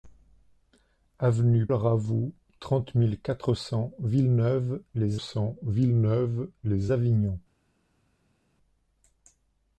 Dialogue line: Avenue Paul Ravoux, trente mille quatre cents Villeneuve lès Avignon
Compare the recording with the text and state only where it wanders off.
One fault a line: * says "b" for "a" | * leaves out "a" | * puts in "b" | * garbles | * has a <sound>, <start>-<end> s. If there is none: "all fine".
* leaves out "Paul"
* puts in "cents Villeneuve lès"